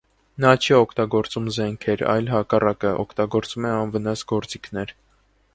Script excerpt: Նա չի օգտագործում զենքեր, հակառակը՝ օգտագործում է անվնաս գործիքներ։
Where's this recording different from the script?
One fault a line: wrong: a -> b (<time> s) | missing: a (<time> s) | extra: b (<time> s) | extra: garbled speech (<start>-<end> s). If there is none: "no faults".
extra: այլ (2.1 s)